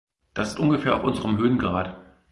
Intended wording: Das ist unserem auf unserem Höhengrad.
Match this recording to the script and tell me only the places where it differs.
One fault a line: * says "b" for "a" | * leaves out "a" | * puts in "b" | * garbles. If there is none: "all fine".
* says "ungefähr" for "unserem"